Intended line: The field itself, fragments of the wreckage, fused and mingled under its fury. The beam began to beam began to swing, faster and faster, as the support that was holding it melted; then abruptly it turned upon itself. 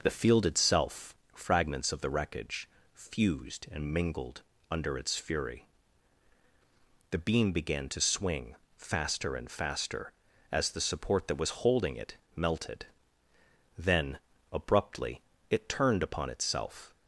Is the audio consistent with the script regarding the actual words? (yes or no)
no